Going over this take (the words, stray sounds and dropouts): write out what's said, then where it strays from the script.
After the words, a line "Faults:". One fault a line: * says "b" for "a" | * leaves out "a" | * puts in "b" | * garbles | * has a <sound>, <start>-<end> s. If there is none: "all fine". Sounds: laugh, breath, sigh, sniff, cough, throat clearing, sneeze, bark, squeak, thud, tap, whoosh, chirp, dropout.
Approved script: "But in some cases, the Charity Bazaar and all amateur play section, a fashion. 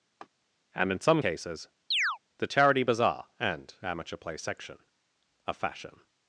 "And in some cases, the Charity Bazaar and amateur play section, a fashion.
Faults:
* has a laugh, 0.2-0.3 s
* says "And" for "But"
* has a chirp, 1.9-2.2 s
* leaves out "all"